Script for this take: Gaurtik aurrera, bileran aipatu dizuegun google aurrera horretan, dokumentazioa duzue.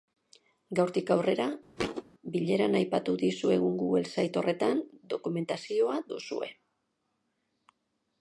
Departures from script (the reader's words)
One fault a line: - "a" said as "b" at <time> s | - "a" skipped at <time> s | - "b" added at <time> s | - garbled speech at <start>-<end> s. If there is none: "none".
- "aurrera" said as "site" at 4.2 s